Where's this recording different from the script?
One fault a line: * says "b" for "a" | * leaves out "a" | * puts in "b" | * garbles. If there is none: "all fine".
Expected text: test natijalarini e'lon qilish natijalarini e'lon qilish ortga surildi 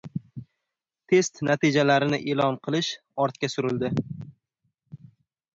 * leaves out "natijalarini e'lon qilish"